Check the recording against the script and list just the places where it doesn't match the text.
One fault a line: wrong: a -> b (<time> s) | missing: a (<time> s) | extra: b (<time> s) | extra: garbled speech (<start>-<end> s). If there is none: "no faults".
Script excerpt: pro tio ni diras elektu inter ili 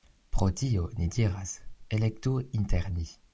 wrong: ili -> ni (3.0 s)